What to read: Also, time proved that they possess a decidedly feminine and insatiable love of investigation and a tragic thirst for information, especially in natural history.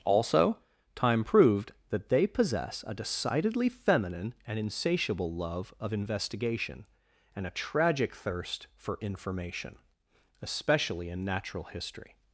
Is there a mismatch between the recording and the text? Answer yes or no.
no